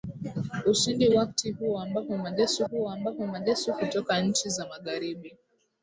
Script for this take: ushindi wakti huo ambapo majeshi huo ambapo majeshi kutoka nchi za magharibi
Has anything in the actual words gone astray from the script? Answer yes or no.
no